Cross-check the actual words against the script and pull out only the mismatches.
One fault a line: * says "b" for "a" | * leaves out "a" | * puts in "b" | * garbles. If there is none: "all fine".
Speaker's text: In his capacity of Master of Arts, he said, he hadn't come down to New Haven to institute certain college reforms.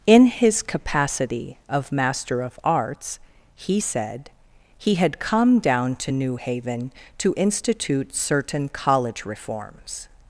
* says "had" for "hadn't"